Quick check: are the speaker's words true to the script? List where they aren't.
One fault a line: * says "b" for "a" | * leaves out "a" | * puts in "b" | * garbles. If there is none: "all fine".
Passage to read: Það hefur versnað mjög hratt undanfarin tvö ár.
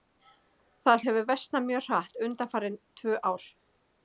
all fine